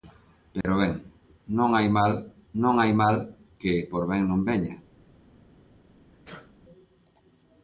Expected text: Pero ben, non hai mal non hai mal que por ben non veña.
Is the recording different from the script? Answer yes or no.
no